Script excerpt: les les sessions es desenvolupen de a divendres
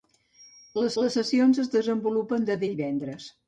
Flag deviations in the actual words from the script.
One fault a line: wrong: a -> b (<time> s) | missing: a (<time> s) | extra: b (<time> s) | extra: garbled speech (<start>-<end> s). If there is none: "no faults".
no faults